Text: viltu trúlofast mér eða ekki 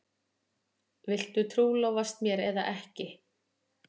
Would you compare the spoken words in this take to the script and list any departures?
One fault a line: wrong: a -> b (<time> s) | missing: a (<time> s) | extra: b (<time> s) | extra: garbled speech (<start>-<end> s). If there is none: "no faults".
no faults